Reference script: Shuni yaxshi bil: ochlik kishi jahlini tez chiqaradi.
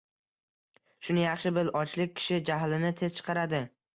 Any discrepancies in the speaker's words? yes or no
no